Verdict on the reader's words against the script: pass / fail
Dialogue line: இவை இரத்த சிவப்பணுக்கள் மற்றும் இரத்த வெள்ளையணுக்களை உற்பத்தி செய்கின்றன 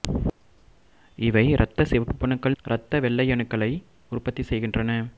fail